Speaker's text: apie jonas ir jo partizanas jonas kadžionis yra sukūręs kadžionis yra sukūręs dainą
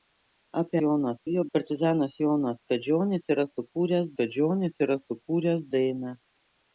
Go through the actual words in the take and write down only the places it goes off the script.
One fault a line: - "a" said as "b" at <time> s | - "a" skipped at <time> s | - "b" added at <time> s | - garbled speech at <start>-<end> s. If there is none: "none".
none